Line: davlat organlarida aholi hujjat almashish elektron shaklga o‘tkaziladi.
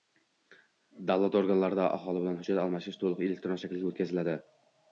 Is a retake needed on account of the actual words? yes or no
yes